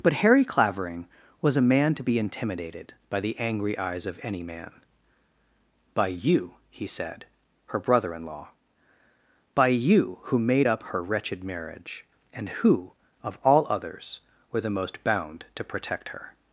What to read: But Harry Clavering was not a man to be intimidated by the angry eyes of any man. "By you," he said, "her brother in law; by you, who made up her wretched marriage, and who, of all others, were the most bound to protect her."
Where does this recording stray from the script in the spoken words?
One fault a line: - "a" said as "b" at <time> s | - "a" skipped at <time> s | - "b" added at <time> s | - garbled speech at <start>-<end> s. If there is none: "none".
- "not" skipped at 1.6 s